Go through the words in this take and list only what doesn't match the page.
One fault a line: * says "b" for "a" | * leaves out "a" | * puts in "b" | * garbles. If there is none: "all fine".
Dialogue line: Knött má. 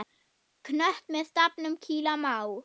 * puts in "með stafnum kýla"